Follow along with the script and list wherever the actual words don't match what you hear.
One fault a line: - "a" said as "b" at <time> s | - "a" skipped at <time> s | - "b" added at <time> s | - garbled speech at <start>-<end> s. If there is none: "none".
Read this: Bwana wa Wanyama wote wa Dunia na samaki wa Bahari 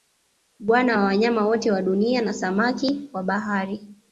none